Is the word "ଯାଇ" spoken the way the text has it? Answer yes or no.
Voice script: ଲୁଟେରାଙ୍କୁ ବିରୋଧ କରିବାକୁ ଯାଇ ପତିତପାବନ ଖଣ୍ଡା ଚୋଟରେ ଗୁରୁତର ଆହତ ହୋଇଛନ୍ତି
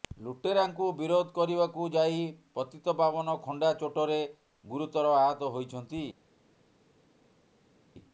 yes